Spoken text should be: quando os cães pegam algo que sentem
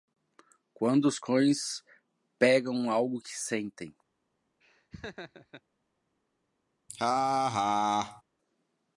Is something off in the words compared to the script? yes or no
no